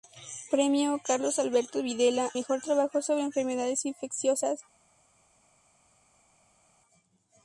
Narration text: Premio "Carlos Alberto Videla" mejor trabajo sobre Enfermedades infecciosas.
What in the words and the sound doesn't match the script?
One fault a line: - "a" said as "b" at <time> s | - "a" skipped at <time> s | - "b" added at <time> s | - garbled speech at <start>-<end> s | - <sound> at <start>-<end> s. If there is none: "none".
none